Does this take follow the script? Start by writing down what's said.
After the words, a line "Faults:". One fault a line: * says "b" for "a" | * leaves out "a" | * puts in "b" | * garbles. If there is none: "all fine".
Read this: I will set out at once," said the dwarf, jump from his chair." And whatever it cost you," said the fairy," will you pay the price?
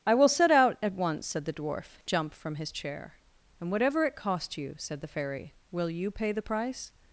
I will set out at once," said the dwarf, jump from his chair." And whatever it cost you," said the fairy," will you pay the price?
Faults:
all fine